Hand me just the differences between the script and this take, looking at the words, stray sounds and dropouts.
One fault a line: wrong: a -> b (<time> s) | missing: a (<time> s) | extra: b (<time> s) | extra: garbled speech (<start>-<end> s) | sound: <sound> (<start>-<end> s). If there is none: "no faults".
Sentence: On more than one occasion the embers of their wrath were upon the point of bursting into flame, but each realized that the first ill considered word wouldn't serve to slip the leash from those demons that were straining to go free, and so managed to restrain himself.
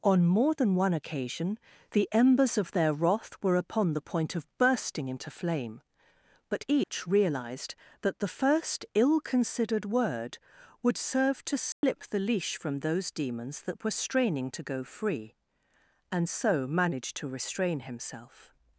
sound: dropout (6.8-6.9 s)
wrong: wouldn't -> would (10.8 s)
sound: dropout (11.7-11.8 s)